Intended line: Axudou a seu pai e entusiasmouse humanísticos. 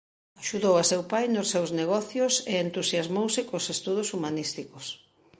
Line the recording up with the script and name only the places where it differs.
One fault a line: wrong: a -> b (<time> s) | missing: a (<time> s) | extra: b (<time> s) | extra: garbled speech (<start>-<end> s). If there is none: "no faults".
extra: nos seus negocios (1.3 s)
extra: cos estudos (3.5 s)